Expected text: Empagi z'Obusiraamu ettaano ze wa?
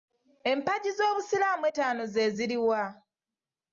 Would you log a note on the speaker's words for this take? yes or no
yes